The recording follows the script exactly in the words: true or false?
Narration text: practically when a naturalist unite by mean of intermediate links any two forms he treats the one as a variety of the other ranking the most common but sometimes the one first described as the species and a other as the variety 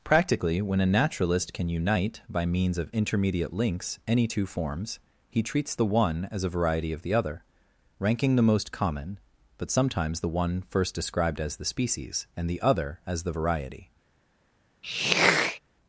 false